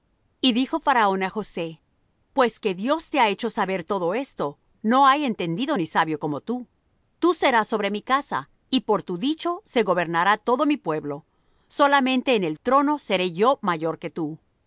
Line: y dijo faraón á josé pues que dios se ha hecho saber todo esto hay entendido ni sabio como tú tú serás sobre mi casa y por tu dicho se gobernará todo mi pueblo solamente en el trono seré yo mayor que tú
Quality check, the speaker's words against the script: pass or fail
fail